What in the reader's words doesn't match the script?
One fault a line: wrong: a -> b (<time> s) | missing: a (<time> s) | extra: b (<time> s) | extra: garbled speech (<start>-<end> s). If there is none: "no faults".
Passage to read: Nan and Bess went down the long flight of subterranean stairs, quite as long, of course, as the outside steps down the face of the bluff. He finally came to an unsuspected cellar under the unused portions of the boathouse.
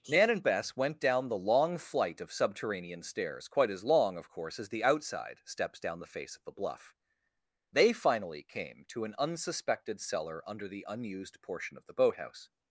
wrong: He -> They (7.7 s)
wrong: portions -> portion (11.4 s)